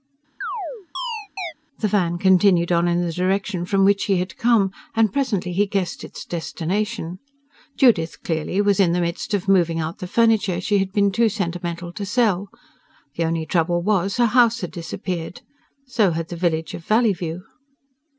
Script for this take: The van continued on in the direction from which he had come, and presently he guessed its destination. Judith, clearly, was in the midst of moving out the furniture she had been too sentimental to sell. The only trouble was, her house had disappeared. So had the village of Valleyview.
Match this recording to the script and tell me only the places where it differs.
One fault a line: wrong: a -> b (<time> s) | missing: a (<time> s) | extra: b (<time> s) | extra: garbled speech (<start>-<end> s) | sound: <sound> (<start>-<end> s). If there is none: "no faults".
sound: chirp (0.4-1.5 s)